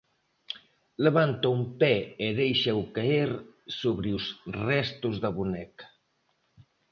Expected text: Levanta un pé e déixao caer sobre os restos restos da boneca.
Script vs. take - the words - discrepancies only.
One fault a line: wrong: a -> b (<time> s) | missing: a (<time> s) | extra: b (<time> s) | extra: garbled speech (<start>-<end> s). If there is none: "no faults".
missing: restos (5.2 s)